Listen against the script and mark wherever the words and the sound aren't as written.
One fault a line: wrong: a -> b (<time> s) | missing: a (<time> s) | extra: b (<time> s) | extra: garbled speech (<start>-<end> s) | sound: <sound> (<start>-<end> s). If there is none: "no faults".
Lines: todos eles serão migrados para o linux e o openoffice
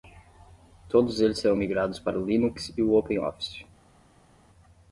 no faults